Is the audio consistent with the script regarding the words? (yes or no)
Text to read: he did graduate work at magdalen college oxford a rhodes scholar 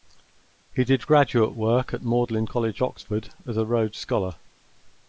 no